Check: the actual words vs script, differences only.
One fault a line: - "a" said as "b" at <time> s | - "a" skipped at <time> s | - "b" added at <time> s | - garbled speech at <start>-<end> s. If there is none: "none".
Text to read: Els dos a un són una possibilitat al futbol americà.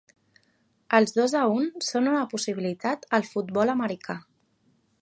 none